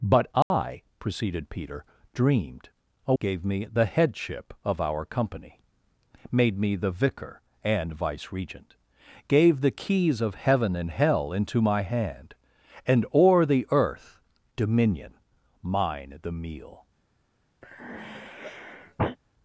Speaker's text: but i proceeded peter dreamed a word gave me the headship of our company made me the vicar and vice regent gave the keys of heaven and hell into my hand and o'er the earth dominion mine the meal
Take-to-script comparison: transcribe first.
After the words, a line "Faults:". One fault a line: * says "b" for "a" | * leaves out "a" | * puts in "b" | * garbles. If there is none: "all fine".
but i proceeded peter dreamed a gave me the headship of our company made me the vicar and vice regent gave the keys of heaven and hell into my hand and o'er the earth dominion mine the meal
Faults:
* leaves out "word"